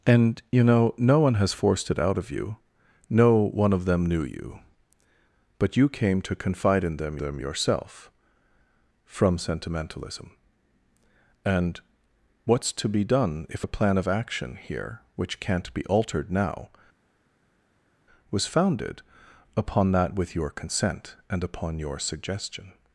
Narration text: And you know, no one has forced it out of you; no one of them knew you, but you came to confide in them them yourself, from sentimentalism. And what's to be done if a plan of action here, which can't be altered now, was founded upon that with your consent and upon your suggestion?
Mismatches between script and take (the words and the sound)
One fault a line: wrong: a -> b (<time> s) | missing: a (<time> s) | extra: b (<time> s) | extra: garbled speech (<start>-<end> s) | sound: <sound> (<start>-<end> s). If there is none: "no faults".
no faults